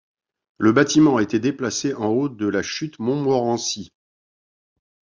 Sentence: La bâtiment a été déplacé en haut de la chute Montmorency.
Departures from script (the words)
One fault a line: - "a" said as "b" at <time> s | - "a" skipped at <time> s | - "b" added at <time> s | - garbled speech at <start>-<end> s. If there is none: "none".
- "La" said as "Le" at 0.6 s